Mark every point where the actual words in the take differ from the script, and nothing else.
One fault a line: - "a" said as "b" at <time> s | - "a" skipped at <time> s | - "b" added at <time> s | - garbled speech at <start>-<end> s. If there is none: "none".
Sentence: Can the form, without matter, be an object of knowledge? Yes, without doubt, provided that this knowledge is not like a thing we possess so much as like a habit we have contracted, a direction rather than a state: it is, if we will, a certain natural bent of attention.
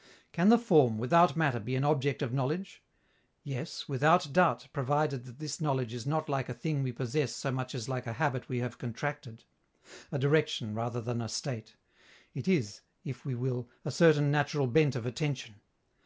none